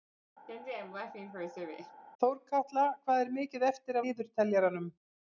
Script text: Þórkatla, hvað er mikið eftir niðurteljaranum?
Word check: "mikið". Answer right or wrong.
right